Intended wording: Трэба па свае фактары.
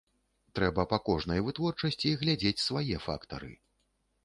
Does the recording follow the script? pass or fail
fail